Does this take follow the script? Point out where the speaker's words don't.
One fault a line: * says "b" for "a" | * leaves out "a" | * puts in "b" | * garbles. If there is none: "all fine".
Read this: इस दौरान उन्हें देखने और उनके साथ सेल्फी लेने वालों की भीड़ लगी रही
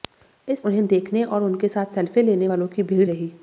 * leaves out "दौरान"
* leaves out "लगी"